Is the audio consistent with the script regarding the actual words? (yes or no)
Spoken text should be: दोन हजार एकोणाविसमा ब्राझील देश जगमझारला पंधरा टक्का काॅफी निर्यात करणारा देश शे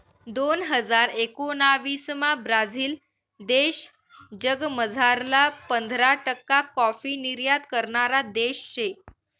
yes